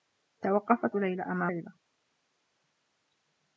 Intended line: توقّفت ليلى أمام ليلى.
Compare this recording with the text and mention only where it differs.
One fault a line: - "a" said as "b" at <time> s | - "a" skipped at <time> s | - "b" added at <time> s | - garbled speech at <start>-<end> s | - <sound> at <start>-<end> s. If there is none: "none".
none